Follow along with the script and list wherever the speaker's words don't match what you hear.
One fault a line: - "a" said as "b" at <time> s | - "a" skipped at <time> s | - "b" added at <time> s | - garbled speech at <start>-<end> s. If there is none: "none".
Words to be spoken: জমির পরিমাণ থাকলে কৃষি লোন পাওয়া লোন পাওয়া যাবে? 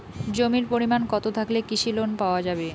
- "কতো" added at 1.1 s
- "লোন পাওয়া" skipped at 2.4 s